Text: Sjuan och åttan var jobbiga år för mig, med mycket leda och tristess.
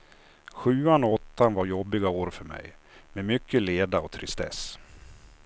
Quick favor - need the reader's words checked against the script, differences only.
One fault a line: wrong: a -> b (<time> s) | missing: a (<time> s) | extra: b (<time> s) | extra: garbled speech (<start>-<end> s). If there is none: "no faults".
no faults